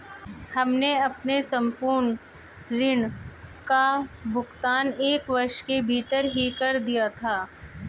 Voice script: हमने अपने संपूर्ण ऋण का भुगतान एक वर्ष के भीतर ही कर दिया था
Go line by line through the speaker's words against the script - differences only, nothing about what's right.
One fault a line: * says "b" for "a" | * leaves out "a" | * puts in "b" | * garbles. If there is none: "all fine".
all fine